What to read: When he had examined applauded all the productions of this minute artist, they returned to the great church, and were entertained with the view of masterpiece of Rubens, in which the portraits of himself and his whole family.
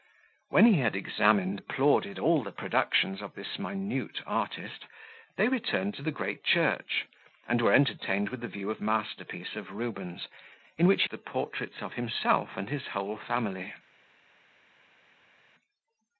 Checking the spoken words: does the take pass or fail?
pass